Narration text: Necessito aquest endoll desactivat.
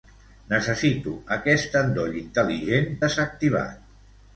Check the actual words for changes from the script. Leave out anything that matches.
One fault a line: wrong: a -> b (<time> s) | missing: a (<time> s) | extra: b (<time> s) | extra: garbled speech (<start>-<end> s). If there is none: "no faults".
extra: intel·ligent (2.2 s)